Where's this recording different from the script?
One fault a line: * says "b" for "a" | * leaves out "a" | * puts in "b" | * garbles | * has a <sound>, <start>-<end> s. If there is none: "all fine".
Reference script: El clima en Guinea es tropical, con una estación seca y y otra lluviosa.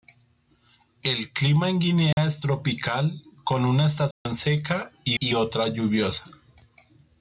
* has a dropout, 2.1-2.2 s
* has a dropout, 4.1-4.3 s